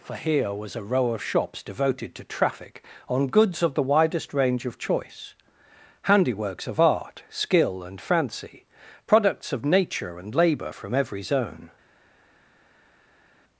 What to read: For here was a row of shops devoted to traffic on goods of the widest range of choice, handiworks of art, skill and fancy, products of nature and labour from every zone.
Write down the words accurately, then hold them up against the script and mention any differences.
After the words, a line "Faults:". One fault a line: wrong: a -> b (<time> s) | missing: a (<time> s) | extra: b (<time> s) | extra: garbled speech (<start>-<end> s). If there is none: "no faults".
For here was a row of shops devoted to traffic on goods of the widest range of choice, handiworks of art, skill and fancy, products of nature and labour from every zone.
Faults:
no faults